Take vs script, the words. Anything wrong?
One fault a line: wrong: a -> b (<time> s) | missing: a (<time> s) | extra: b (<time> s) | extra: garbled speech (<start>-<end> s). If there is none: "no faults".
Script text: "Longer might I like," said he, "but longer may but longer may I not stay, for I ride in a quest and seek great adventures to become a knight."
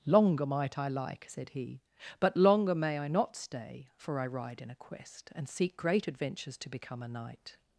missing: but longer may (3.0 s)